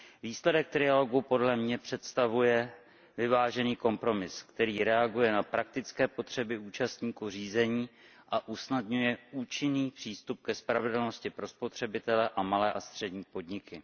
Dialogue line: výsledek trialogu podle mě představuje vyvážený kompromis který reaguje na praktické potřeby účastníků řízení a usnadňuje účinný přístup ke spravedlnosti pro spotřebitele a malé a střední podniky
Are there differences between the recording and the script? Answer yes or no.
no